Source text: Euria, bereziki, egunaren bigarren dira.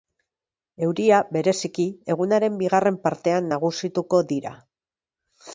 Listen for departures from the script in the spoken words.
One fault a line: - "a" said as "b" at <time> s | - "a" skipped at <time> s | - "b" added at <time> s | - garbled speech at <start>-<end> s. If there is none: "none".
- "partean nagusituko" added at 3.1 s